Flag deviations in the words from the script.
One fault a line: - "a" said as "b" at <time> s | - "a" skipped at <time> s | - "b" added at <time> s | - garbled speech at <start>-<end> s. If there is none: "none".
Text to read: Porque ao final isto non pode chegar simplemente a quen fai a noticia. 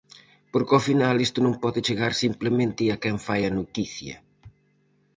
none